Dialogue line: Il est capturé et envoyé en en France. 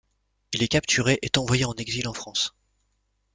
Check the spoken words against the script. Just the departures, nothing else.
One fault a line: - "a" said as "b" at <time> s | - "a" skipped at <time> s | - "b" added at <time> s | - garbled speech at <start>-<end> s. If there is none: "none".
- "exil" added at 1.7 s